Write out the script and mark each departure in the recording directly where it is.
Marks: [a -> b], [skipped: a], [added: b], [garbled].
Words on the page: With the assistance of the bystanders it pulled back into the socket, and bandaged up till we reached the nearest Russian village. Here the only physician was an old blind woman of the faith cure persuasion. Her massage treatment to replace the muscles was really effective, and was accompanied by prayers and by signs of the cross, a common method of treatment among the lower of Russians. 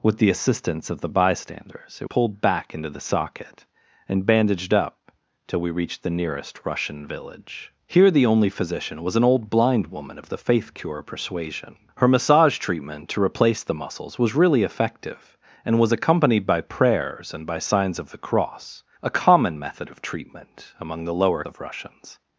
With the assistance of the bystanders it pulled back into the socket, and bandaged up till we reached the nearest Russian village. Here the only physician was an old blind woman of the faith cure persuasion. Her massage treatment to replace the muscles was really effective, and was accompanied by prayers and by signs of the cross, a common method of treatment among the lower of Russians.